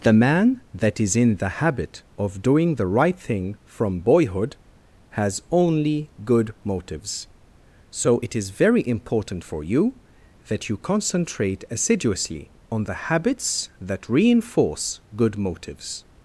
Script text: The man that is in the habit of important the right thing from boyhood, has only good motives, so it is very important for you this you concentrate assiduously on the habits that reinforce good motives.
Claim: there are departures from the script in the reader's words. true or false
true